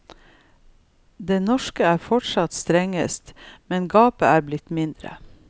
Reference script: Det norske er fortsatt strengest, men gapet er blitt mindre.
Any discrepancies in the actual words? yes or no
no